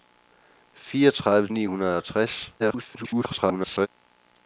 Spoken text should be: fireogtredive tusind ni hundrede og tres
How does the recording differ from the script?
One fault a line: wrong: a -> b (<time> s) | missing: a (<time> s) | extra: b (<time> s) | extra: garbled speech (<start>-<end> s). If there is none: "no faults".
missing: tusind (1.5 s)
extra: garbled speech (2.6-3.9 s)